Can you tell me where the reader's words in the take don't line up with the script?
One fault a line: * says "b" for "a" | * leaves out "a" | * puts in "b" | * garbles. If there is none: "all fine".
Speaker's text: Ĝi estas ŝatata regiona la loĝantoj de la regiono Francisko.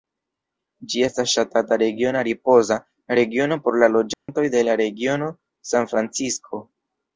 * puts in "ripoza regiono por"
* puts in "San"